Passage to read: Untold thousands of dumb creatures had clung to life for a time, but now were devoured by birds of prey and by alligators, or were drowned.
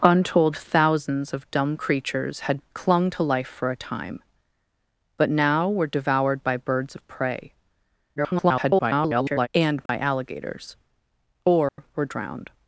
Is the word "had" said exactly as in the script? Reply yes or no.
yes